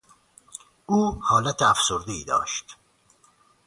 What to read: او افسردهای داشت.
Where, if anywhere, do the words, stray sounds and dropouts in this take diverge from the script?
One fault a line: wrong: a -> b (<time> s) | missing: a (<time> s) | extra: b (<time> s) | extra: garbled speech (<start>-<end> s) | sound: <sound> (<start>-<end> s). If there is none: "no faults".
extra: حالت (1.2 s)